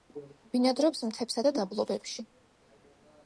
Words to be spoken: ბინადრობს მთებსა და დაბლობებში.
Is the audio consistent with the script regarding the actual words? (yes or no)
yes